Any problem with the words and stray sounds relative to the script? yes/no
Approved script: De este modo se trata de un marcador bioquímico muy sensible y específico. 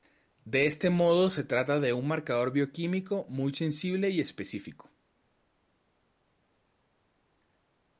no